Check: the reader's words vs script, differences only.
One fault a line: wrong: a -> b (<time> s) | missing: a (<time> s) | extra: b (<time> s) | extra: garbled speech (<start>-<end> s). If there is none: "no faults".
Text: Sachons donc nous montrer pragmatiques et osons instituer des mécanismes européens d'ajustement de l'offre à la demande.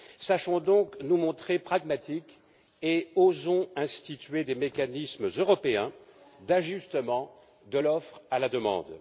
no faults